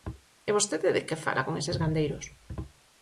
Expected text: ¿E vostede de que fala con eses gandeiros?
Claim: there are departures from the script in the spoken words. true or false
false